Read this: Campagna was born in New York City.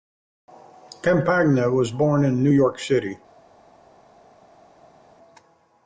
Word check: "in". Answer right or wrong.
right